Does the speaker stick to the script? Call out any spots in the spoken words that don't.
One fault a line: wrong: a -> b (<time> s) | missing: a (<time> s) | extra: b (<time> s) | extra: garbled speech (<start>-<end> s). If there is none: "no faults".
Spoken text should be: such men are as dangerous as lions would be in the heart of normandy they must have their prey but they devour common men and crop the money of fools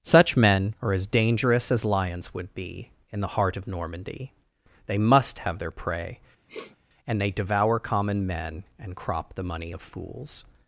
wrong: but -> and (7.0 s)